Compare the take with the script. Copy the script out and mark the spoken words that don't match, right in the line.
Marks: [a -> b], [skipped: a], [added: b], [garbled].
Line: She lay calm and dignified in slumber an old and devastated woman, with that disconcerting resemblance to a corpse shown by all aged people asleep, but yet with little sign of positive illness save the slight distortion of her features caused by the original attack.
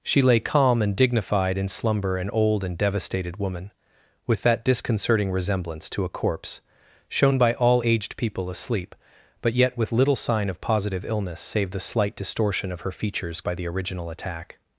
She lay calm and dignified in slumber an old and devastated woman, with that disconcerting resemblance to a corpse shown by all aged people asleep, but yet with little sign of positive illness save the slight distortion of her features [skipped: caused] by the original attack.